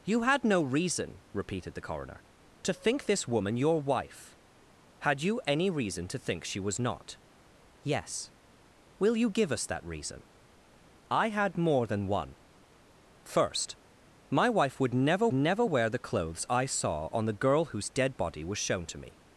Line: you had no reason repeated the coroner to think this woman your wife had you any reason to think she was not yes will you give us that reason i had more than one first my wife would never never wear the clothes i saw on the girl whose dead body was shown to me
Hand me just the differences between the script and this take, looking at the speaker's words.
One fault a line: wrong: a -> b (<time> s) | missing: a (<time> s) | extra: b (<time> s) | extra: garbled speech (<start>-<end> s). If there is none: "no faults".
no faults